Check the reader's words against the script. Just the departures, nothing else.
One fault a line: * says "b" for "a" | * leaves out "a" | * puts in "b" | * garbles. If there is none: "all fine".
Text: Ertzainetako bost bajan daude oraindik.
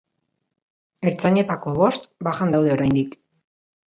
all fine